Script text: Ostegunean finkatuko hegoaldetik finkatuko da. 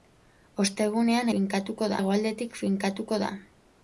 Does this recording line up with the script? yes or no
yes